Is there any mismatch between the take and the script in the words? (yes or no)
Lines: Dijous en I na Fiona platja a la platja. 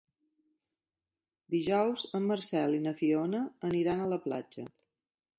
yes